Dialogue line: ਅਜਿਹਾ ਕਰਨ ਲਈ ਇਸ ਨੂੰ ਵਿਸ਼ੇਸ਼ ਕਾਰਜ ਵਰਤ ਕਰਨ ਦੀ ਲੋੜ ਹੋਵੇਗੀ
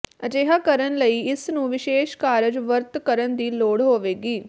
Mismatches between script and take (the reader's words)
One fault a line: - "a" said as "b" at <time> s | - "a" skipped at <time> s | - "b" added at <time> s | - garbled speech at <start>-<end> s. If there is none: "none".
none